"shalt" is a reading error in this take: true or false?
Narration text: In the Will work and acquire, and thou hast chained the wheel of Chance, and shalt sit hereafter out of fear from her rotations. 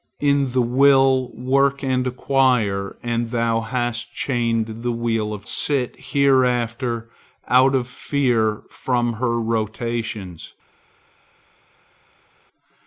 true